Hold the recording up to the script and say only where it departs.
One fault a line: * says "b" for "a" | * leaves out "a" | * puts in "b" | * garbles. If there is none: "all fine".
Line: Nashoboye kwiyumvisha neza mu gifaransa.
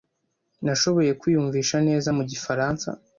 all fine